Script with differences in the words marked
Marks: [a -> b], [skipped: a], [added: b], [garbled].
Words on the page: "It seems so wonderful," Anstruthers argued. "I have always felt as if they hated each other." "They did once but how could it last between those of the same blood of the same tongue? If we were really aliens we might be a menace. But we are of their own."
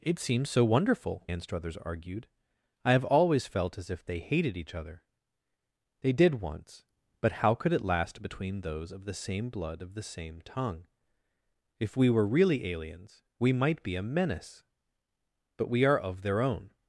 "It seems so wonderful," Anstruthers argued. "I have always felt as if they hated each other." "They did once but how could it last between those of the same blood of the same tongue? If we were really aliens we might be a menace. But we are of their own."